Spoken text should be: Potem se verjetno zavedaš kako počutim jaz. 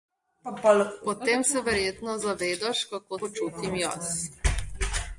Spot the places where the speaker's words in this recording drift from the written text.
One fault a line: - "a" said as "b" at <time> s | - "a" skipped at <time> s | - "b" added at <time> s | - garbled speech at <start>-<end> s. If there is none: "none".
none